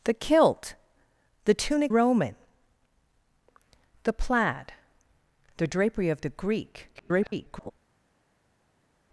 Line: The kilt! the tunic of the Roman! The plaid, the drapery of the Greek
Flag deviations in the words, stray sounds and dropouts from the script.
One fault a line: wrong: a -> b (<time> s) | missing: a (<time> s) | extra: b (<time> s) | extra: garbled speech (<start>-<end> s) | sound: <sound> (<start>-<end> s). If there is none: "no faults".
missing: of the (1.9 s)
extra: garbled speech (6.9-7.7 s)